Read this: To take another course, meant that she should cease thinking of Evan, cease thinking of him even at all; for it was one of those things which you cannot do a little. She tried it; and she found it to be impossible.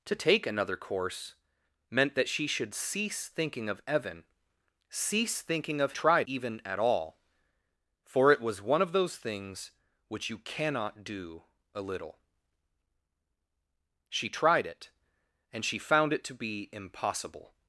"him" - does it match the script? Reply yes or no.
no